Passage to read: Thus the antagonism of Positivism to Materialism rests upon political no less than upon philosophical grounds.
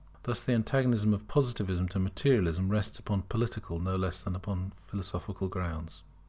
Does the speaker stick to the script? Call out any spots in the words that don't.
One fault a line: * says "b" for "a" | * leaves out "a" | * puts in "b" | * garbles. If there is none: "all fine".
all fine